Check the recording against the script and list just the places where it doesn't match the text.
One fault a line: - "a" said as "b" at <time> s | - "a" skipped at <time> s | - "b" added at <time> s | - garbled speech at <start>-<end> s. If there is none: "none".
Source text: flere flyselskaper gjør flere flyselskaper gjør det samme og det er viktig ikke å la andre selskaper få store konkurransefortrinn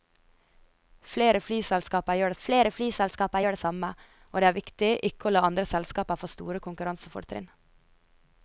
none